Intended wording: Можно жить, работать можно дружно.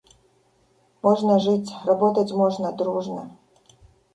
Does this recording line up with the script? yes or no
yes